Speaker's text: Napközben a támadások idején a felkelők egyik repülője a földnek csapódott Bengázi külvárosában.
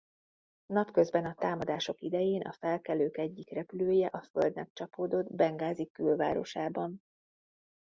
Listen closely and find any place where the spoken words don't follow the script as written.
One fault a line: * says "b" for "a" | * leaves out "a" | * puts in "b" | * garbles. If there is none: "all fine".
all fine